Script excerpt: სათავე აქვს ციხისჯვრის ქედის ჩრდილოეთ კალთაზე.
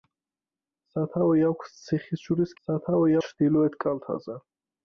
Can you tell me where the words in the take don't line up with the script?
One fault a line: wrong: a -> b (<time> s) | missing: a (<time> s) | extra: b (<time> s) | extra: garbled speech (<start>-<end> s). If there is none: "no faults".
wrong: ქედის -> სათავე (2.7 s)